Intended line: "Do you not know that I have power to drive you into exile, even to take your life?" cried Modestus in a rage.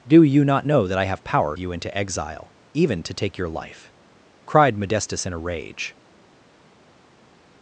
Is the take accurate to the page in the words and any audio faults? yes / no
no